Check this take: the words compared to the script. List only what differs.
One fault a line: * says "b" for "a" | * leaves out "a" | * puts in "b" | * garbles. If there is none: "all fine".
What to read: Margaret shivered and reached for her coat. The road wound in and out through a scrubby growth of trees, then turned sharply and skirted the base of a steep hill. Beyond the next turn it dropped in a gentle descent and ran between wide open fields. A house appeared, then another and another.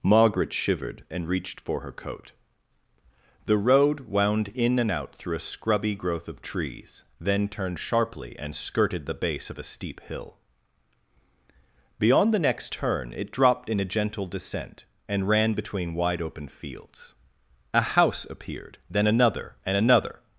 all fine